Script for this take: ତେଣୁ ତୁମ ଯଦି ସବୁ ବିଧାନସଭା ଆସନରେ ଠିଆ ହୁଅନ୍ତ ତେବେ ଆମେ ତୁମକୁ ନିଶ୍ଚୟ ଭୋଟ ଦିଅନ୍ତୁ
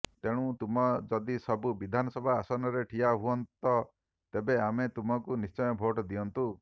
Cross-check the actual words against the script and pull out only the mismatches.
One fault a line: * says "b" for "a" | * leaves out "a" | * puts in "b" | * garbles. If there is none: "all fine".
all fine